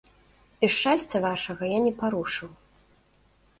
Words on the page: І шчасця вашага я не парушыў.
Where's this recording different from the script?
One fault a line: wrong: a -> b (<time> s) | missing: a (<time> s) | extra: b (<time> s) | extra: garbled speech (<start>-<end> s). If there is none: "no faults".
no faults